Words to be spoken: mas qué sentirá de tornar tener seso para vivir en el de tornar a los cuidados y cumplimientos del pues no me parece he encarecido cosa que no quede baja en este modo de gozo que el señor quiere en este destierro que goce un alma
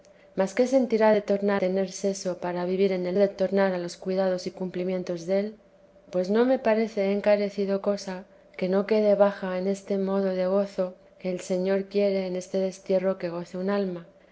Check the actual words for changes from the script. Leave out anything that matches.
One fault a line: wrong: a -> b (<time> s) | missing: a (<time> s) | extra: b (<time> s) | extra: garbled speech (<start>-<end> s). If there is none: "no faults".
no faults